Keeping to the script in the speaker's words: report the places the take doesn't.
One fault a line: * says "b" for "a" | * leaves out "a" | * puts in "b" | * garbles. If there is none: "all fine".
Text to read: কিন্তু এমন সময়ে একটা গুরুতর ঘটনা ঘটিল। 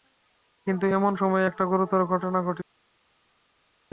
all fine